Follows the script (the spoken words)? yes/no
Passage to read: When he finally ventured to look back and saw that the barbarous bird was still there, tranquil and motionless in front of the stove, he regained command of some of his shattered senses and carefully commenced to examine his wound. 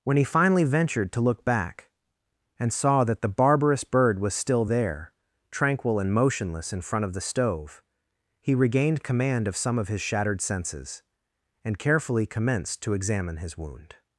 yes